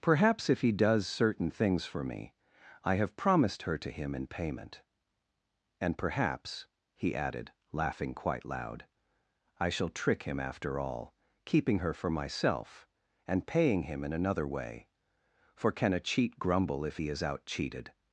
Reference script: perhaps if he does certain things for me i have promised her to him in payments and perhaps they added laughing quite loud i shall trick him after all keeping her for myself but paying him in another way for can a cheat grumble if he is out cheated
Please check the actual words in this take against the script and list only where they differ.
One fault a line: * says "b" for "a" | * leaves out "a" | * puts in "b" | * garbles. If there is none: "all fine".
* says "payment" for "payments"
* says "he" for "they"
* says "and" for "but"